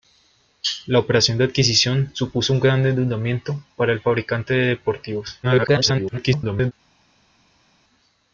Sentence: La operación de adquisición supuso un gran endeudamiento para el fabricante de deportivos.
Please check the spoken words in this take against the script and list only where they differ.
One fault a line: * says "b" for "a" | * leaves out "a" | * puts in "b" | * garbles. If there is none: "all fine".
* garbles